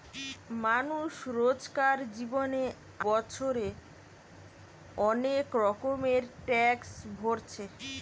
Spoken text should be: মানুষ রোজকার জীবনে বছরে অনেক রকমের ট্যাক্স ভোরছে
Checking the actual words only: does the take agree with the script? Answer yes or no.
yes